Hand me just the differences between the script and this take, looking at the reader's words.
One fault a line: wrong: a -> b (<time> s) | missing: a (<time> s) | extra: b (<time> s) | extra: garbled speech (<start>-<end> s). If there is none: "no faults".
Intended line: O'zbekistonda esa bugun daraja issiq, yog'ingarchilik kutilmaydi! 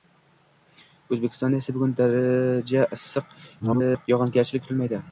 extra: garbled speech (3.6-4.1 s)